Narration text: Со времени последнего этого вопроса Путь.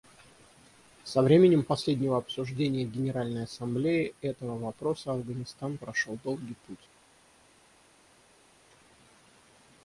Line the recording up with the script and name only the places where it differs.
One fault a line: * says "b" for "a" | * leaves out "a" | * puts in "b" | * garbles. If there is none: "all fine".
* puts in "обсуждения Генеральной Ассамблеей"
* puts in "Афганистан прошел долгий"